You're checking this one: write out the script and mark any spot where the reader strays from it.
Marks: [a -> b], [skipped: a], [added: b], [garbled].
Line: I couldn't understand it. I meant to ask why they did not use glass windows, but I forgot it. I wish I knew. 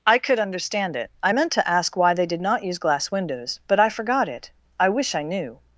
I [couldn't -> could] understand it. I meant to ask why they did not use glass windows, but I forgot it. I wish I knew.